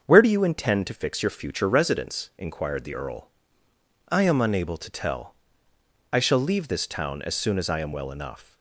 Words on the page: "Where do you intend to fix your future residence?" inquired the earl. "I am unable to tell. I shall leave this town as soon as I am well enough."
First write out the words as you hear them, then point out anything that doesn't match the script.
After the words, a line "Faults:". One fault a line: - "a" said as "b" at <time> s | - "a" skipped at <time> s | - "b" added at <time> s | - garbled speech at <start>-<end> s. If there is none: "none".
"Where do you intend to fix your future residence?" inquired the earl. "I am unable to tell. I shall leave this town as soon as I am well enough."
Faults:
none